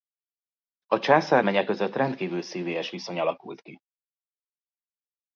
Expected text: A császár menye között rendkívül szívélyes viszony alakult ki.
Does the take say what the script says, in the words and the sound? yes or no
yes